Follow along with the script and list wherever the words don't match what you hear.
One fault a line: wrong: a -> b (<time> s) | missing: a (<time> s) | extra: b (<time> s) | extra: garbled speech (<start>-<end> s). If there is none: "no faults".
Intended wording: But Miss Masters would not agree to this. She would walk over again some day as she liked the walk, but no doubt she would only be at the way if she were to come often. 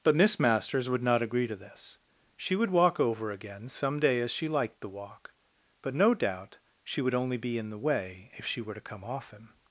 wrong: at -> in (7.6 s)